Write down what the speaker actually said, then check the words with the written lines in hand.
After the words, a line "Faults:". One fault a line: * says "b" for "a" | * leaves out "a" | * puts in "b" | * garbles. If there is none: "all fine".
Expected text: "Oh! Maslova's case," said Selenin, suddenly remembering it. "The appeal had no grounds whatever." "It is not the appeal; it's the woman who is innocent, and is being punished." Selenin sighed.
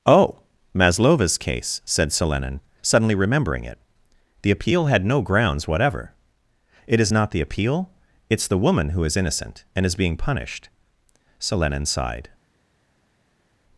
"Oh! Maslova's case," said Selenin, suddenly remembering it. "The appeal had no grounds whatever." "It is not the appeal; it's the woman who is innocent, and is being punished." Selenin sighed.
Faults:
all fine